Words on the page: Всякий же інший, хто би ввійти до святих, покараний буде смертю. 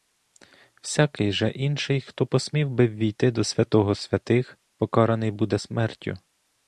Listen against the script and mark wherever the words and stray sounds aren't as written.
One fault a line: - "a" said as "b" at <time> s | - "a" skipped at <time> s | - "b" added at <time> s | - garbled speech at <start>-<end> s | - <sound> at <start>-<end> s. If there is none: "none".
- "посмів" added at 2.2 s
- "святого" added at 3.4 s